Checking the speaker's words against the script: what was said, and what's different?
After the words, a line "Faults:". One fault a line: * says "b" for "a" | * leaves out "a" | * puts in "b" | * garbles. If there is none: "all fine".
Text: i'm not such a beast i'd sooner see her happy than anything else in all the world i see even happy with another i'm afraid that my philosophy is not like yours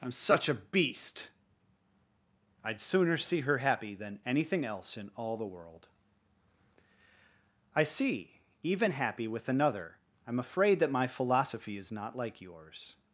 i'm such a beast i'd sooner see her happy than anything else in all the world i see even happy with another i'm afraid that my philosophy is not like yours
Faults:
* leaves out "not"